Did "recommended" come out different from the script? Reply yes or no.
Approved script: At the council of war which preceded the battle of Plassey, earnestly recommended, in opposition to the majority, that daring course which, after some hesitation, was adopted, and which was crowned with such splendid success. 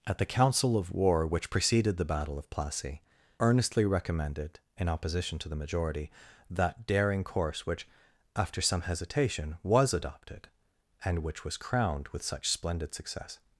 no